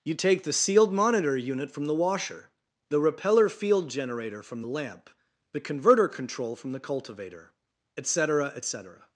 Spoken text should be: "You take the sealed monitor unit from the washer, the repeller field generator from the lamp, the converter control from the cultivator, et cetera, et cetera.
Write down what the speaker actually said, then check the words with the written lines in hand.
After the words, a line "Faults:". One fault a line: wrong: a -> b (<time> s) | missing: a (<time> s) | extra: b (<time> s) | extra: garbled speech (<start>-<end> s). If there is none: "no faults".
"You take the sealed monitor unit from the washer, the repeller field generator from the lamp, the converter control from the cultivator, et cetera, et cetera.
Faults:
no faults